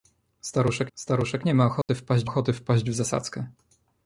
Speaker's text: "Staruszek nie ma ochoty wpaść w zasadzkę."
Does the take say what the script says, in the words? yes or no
no